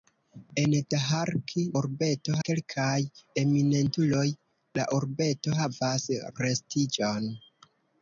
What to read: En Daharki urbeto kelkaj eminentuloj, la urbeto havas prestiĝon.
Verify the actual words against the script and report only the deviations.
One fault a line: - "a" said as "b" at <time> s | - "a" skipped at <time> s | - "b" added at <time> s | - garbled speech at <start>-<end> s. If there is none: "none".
none